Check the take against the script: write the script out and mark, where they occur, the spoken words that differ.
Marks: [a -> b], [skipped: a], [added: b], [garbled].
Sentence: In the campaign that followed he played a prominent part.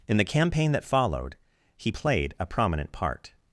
In the campaign that followed he played a prominent part.